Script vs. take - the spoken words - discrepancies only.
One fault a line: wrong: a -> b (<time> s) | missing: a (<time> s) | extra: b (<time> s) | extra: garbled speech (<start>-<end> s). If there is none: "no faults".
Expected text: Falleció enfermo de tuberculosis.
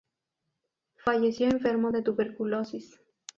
no faults